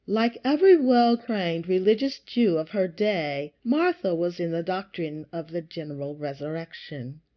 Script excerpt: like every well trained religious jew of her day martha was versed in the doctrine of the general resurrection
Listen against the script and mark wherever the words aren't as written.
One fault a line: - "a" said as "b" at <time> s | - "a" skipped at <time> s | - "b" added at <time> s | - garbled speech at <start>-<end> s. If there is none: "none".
- "versed" skipped at 4.4 s